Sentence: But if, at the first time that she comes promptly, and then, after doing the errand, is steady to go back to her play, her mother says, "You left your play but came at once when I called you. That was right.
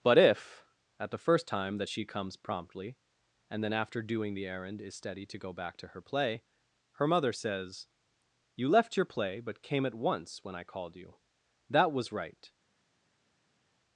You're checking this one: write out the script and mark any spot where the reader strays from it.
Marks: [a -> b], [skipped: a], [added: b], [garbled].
But if, at the first time that she comes promptly, and then, after doing the errand, is steady to go back to her play, her mother says, "You left your play but came at once when I called you. That was right.